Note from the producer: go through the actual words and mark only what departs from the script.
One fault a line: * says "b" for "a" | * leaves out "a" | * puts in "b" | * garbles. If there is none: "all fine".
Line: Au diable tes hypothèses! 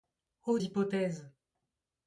* leaves out "diable tes"